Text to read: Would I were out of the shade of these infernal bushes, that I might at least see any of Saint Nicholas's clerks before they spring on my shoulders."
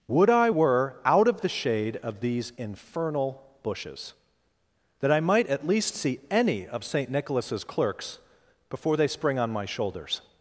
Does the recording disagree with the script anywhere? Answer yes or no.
no